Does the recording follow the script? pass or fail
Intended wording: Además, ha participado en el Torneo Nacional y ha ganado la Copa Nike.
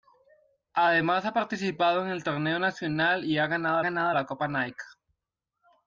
fail